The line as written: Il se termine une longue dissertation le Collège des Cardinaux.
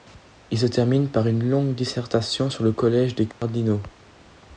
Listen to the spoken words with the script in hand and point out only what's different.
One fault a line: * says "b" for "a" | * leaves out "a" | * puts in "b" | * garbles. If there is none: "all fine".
* puts in "par"
* puts in "sur"